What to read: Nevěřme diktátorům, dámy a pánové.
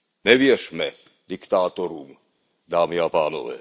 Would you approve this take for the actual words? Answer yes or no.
yes